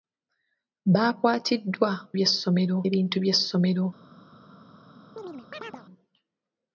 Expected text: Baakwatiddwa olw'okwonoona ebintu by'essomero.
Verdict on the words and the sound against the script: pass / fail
fail